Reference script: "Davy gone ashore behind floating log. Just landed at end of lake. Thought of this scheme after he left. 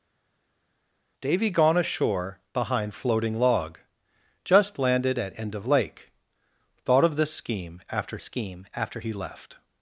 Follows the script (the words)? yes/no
no